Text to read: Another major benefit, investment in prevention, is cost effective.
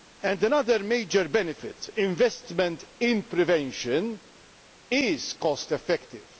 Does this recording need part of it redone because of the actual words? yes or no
no